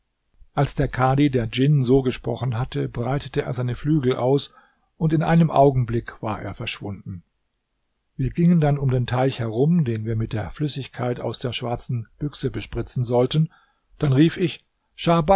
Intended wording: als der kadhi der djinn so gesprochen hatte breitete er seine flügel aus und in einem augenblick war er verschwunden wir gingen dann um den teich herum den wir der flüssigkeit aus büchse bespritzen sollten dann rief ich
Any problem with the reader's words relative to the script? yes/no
yes